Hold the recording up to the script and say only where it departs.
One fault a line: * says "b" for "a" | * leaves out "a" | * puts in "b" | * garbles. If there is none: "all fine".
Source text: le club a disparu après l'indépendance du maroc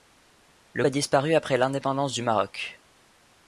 * leaves out "club"